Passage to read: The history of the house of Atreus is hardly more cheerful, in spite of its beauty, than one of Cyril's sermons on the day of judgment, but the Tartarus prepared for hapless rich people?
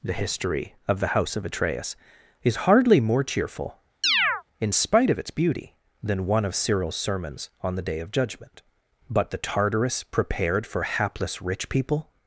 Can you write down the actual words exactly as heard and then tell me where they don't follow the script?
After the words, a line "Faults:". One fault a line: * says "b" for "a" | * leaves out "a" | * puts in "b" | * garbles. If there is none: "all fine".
The history of the house of Atreus is hardly more cheerful, in spite of its beauty, than one of Cyril's sermons on the day of judgment, but the Tartarus prepared for hapless rich people?
Faults:
all fine